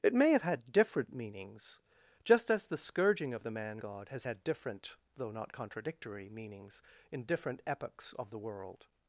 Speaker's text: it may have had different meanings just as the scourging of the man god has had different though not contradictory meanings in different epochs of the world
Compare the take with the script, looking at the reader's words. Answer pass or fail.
pass